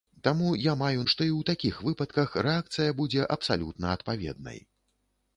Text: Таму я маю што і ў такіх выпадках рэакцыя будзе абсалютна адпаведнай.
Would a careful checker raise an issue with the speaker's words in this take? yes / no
no